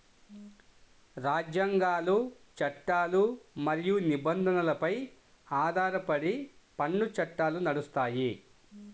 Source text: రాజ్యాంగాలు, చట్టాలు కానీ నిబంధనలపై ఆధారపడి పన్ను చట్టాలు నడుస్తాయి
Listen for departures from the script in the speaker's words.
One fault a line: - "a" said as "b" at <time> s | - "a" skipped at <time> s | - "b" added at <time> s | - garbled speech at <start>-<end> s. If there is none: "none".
- "కానీ" said as "మరియు" at 3.7 s